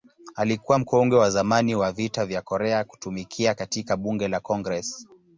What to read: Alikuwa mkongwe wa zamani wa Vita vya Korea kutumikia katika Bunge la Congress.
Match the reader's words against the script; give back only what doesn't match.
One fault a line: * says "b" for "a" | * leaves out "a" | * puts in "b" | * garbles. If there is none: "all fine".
all fine